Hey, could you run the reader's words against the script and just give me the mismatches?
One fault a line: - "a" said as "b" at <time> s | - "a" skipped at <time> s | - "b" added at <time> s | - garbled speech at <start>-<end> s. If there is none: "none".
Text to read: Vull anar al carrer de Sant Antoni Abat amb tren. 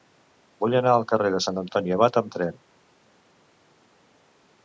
none